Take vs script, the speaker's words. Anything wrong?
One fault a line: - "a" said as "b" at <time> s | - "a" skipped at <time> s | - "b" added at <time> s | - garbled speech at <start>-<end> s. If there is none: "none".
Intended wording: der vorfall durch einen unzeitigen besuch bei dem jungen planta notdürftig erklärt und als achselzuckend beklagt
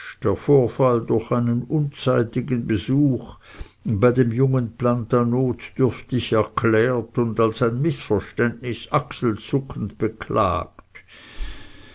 - "ein mißverständnis" added at 7.6 s